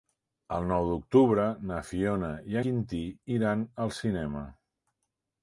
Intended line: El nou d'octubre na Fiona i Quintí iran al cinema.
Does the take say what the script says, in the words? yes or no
yes